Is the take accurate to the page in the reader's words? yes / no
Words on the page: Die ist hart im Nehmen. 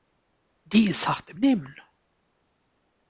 yes